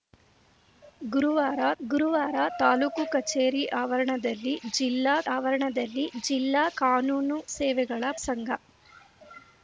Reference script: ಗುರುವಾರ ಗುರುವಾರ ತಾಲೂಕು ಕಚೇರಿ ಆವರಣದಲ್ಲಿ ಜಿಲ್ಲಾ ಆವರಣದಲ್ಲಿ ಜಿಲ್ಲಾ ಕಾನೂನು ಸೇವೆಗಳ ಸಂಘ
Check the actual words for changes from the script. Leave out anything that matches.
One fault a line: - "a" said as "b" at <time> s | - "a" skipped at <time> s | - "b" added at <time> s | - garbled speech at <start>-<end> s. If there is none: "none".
none